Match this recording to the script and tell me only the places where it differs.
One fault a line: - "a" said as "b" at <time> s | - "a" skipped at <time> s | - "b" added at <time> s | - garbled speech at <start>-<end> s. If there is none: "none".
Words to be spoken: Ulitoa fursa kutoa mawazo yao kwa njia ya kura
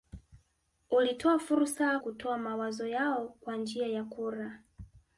none